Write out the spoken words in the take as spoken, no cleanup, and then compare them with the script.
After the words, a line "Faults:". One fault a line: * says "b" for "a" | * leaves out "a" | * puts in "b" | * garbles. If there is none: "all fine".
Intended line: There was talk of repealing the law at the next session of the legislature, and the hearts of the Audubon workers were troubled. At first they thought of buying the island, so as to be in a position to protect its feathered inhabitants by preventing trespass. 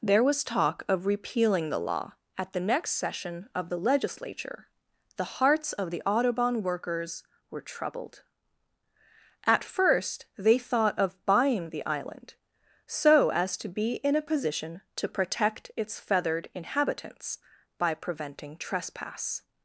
There was talk of repealing the law at the next session of the legislature, the hearts of the Audubon workers were troubled. At first they thought of buying the island, so as to be in a position to protect its feathered inhabitants by preventing trespass.
Faults:
* leaves out "and"